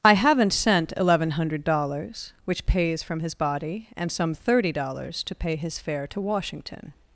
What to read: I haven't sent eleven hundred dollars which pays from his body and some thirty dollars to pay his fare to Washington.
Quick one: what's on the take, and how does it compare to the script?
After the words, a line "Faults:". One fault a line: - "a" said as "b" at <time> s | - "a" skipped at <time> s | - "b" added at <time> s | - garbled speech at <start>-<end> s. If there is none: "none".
I haven't sent eleven hundred dollars which pays from his body and some thirty dollars to pay his fare to Washington.
Faults:
none